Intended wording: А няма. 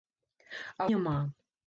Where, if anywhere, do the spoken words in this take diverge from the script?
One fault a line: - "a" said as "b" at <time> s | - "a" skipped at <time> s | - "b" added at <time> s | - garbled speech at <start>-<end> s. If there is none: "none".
none